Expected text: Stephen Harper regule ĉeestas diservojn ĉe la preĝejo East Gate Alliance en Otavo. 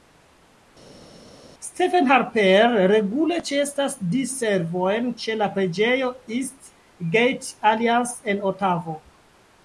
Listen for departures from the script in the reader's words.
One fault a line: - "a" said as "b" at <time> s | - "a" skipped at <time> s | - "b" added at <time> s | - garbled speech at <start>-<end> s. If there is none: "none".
none